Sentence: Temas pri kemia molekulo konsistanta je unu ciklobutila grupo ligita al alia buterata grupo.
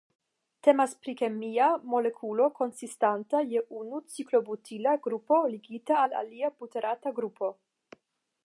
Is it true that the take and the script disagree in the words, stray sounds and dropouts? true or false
false